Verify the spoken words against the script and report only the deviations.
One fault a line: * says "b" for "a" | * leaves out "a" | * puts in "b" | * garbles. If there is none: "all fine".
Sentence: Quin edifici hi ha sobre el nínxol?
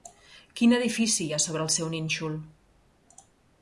* puts in "seu"